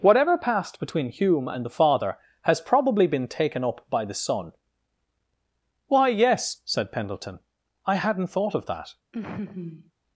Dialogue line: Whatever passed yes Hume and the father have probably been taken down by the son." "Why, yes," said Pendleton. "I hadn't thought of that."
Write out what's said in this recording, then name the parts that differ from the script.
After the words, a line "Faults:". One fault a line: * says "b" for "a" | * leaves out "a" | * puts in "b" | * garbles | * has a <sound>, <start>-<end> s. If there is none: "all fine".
Whatever passed between Hume and the father has probably been taken up by the son." "Why, yes," said Pendleton. "I hadn't thought of that."
Faults:
* says "between" for "yes"
* says "has" for "have"
* says "up" for "down"
* has a laugh, 9.1-9.9 s